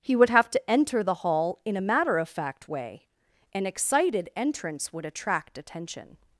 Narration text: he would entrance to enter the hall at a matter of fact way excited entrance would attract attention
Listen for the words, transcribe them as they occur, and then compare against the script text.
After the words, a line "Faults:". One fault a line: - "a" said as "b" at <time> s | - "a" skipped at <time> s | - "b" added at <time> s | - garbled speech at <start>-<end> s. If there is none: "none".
he would have to enter the hall in a matter of fact way an excited entrance would attract attention
Faults:
- "entrance" said as "have" at 0.3 s
- "at" said as "in" at 1.6 s
- "an" added at 3.5 s